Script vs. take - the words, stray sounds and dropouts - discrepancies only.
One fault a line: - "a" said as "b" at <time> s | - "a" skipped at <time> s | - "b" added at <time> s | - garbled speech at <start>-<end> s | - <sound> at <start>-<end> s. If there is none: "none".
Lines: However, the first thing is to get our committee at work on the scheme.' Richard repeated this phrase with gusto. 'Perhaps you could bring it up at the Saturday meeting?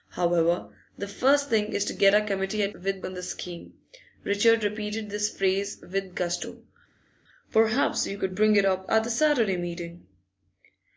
- "work" said as "with" at 2.7 s